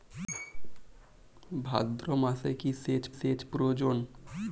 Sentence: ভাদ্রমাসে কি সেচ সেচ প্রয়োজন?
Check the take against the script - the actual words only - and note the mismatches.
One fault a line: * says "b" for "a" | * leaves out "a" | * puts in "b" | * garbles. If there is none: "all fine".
all fine